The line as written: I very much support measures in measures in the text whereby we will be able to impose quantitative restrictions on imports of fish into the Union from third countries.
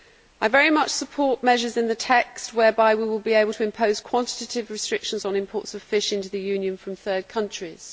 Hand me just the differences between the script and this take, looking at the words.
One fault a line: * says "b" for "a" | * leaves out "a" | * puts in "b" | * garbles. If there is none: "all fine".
* leaves out "measures in"